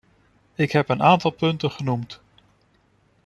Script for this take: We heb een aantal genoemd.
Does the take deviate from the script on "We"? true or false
true